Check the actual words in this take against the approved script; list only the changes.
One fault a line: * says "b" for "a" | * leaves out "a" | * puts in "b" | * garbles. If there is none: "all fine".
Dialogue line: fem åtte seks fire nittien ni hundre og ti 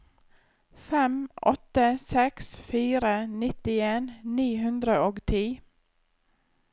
all fine